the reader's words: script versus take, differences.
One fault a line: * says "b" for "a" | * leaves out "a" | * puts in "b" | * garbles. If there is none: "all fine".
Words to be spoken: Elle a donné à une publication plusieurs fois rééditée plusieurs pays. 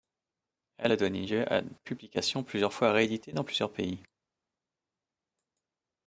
* puts in "lieu"
* puts in "dans"